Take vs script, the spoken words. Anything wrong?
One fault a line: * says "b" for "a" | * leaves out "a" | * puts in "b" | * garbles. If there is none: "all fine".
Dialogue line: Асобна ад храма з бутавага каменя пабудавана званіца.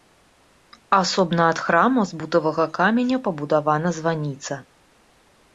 all fine